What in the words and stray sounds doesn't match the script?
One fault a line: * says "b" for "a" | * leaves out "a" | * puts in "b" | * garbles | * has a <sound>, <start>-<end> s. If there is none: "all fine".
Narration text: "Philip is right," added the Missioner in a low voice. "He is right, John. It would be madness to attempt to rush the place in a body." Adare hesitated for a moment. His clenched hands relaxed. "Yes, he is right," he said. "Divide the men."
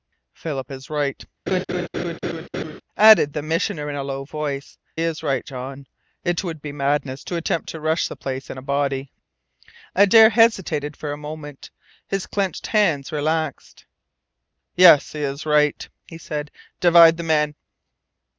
* has a laugh, 1.5-2.8 s
* leaves out "He"